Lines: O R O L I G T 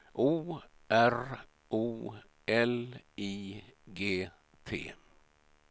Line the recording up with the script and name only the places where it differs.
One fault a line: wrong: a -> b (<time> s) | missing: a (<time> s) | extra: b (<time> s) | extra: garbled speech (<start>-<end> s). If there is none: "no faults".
no faults